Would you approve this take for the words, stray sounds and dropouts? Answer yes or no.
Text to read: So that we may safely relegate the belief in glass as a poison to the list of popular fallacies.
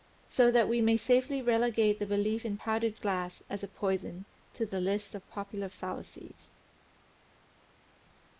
no